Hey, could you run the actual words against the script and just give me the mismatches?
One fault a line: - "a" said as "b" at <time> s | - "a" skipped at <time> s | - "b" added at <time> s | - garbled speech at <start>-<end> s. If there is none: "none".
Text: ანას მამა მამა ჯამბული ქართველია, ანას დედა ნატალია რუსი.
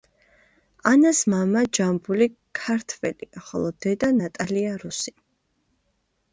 - "მამა" skipped at 1.6 s
- "ანას" said as "ხოლო" at 3.5 s